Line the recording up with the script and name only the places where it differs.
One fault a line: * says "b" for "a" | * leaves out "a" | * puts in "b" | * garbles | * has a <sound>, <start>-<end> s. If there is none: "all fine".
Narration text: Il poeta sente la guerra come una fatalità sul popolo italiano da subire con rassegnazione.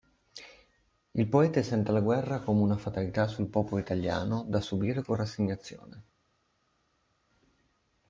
all fine